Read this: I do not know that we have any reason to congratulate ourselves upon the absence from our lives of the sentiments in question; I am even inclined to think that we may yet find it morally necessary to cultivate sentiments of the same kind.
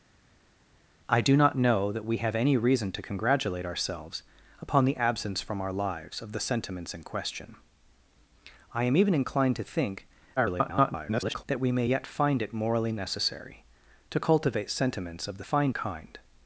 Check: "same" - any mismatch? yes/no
yes